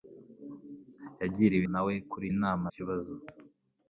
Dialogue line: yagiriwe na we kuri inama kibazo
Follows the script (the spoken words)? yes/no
yes